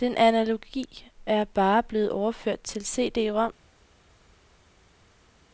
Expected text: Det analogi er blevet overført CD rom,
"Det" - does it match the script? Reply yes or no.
no